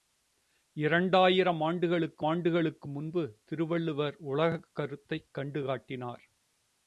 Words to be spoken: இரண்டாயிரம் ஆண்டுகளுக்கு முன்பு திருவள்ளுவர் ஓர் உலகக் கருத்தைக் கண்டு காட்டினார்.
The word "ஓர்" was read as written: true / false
false